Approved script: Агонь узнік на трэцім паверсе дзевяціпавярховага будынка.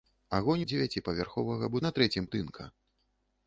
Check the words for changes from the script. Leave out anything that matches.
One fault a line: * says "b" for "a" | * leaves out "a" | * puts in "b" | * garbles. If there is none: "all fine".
* says "дзевяціпавярховага" for "узнік"
* leaves out "паверсе дзевяціпавярховага"